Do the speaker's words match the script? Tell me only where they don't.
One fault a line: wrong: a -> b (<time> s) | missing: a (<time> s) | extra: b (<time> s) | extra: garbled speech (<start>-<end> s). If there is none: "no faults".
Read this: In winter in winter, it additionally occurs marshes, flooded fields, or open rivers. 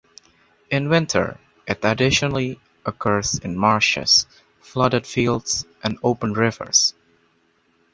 missing: in winter (1.4 s)
extra: in (3.4 s)
wrong: or -> and (5.8 s)